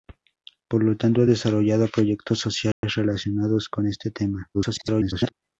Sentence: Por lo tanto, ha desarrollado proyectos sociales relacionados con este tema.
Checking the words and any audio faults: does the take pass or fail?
fail